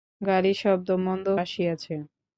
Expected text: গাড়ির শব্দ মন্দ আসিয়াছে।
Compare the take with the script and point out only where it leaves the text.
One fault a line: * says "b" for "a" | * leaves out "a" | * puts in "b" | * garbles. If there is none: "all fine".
all fine